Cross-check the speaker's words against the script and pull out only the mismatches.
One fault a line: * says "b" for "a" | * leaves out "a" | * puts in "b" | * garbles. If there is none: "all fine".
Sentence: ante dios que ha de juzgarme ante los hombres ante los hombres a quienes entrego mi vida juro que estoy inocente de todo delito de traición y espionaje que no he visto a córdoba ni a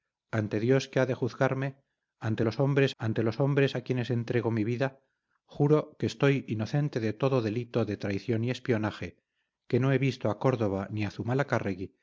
all fine